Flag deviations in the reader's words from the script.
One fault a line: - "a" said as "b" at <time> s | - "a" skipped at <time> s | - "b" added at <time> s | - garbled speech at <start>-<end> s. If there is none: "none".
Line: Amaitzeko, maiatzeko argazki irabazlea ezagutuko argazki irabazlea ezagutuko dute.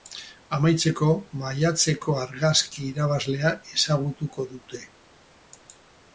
- "argazki irabazlea ezagutuko" skipped at 4.5 s